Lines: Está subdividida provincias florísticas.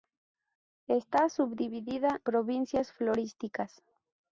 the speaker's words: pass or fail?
pass